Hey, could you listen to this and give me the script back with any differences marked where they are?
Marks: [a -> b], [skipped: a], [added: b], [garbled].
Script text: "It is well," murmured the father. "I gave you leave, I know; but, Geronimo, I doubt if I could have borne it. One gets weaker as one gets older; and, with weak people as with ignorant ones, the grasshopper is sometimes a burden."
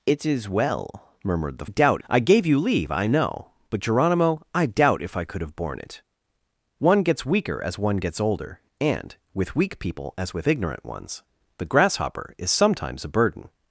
"It is well," murmured the [father. -> doubt] "I gave you leave, I know; but, Geronimo, I doubt if I could have borne it. One gets weaker as one gets older; and, with weak people as with ignorant ones, the grasshopper is sometimes a burden."